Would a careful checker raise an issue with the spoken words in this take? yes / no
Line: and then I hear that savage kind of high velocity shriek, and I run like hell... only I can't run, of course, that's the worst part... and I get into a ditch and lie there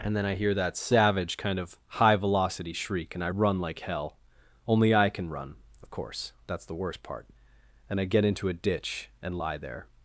yes